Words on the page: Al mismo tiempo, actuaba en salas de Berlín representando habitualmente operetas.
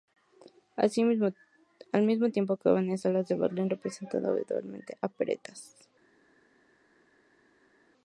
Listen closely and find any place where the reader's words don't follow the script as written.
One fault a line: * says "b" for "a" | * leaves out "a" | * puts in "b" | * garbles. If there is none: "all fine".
all fine